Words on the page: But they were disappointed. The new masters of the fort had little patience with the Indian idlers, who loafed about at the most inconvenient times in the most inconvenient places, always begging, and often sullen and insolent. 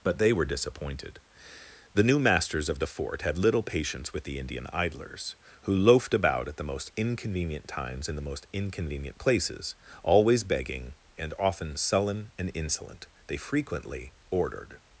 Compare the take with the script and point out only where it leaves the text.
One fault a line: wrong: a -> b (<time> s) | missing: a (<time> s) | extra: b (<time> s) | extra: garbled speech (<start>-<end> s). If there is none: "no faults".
extra: They frequently ordered (13.3 s)